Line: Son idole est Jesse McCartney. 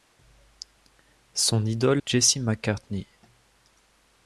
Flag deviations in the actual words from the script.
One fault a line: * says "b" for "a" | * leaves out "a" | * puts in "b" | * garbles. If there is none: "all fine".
* leaves out "est"